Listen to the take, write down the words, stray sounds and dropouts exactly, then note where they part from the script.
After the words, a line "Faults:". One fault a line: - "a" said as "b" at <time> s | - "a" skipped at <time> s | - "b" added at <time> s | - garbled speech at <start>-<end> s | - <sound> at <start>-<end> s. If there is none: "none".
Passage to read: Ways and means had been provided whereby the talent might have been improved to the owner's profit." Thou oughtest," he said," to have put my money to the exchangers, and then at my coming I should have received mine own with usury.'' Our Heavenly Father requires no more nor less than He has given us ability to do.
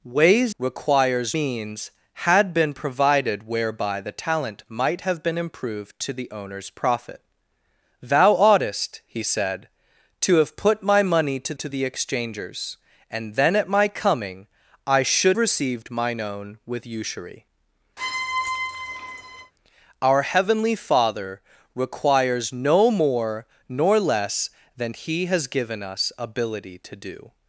Ways requires means had been provided whereby the talent might have been improved to the owner's profit." Thou oughtest," he said," to have put my money to to the exchangers, and then at my coming I should received mine own with usury.'' Our Heavenly Father requires no more nor less than He has given us ability to do.
Faults:
- "and" said as "requires" at 0.6 s
- "to" added at 11.5 s
- "have" skipped at 15.4 s
- squeak at 18.0-19.5 s